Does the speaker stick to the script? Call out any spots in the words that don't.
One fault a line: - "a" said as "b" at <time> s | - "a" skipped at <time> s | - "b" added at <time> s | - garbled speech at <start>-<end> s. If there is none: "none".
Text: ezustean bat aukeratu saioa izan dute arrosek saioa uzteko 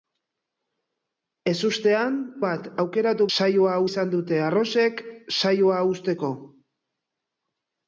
none